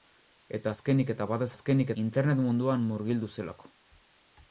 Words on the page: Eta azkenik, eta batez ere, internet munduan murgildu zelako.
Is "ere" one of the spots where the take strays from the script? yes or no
yes